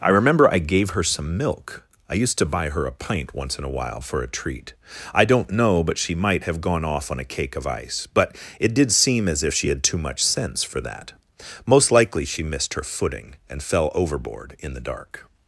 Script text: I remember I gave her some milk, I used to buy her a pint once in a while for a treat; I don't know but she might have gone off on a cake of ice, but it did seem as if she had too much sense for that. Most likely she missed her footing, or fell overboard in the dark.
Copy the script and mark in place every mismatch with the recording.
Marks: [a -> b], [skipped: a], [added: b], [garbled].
I remember I gave her some milk, I used to buy her a pint once in a while for a treat; I don't know but she might have gone off on a cake of ice, but it did seem as if she had too much sense for that. Most likely she missed her footing, [or -> and] fell overboard in the dark.